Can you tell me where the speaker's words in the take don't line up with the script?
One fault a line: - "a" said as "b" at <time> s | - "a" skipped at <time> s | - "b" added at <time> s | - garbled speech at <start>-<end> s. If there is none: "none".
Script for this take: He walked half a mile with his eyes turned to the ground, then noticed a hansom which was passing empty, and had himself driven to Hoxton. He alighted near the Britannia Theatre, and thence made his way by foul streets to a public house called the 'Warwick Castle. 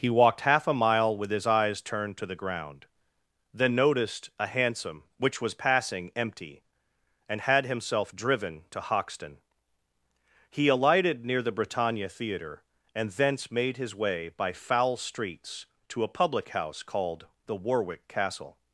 none